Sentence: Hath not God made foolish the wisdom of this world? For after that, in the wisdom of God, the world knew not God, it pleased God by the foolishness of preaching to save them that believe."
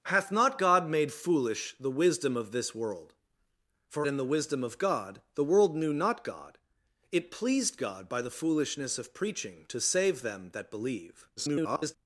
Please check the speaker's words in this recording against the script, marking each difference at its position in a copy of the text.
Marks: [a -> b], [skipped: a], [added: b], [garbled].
Hath not God made foolish the wisdom of this world? For [skipped: after that,] in the wisdom of God, the world knew not God, it pleased God by the foolishness of preaching to save them that believe." [garbled]